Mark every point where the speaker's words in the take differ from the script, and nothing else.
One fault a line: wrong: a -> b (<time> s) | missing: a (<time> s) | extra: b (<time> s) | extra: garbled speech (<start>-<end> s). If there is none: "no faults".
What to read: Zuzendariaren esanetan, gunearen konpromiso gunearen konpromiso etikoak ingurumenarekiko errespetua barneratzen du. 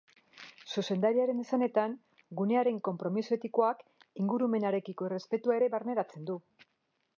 missing: gunearen konpromiso (3.4 s)
extra: ere (5.6 s)